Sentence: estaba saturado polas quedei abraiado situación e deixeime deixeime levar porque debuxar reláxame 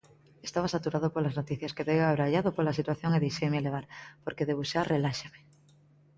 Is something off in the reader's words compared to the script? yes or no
yes